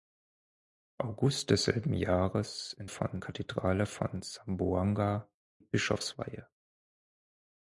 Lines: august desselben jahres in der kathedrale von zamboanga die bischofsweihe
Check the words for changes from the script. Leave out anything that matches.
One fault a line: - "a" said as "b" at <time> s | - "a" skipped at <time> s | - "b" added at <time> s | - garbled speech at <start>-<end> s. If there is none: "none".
- "der" said as "von" at 2.9 s
- "die" skipped at 5.3 s